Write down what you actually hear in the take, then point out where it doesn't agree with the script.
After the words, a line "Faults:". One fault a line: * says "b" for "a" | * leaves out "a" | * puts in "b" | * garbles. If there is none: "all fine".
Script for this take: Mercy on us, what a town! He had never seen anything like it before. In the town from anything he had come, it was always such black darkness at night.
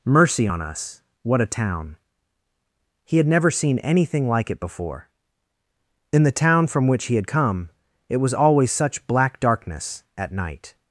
Mercy on us, what a town! He had never seen anything like it before. In the town from which he had come, it was always such black darkness at night.
Faults:
* says "which" for "anything"